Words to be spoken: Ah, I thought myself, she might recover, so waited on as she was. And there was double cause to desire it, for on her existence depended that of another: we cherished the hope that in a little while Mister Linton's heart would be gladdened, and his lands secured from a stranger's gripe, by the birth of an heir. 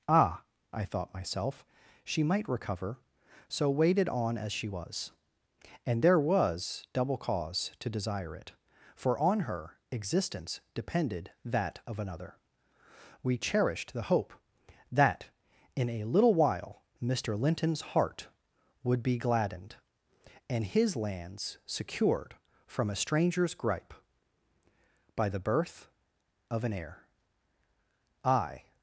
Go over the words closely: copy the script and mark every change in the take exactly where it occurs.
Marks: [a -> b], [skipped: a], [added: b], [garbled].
Ah, I thought myself, she might recover, so waited on as she was. And there was double cause to desire it, for on her existence depended that of another: we cherished the hope that in a little while Mister Linton's heart would be gladdened, and his lands secured from a stranger's gripe, by the birth of an heir. [added: I]